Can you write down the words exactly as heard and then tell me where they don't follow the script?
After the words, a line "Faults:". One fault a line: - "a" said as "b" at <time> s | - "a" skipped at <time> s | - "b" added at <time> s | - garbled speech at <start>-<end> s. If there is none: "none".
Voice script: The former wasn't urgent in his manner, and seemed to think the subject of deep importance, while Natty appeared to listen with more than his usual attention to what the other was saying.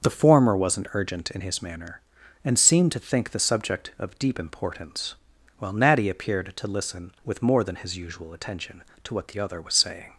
The former wasn't urgent in his manner, and seemed to think the subject of deep importance, while Natty appeared to listen with more than his usual attention to what the other was saying.
Faults:
none